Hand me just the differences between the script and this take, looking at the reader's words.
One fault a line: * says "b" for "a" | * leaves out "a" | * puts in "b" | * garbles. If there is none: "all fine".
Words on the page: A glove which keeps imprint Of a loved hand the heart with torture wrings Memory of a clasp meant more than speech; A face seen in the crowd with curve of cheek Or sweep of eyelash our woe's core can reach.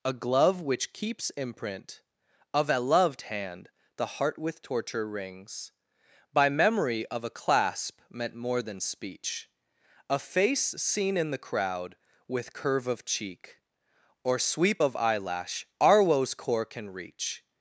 * puts in "By"